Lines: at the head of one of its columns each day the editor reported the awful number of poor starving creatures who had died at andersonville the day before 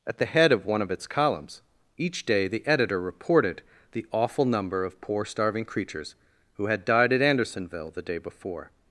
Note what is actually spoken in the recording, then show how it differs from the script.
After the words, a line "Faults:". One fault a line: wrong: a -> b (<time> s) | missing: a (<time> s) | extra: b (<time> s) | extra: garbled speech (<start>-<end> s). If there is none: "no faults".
at the head of one of its columns each day the editor reported the awful number of poor starving creatures who had died at andersonville the day before
Faults:
no faults